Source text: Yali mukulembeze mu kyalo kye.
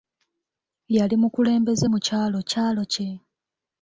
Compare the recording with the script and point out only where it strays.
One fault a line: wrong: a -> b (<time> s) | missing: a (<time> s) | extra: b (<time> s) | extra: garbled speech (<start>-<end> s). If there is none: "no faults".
extra: kyalo (2.5 s)